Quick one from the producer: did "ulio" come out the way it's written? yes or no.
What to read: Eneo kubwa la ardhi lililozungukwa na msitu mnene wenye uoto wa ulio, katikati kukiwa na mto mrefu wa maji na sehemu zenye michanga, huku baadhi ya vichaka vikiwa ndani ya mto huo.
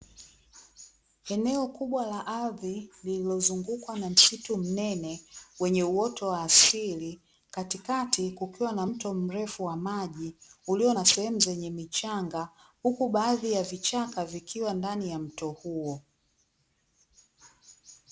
no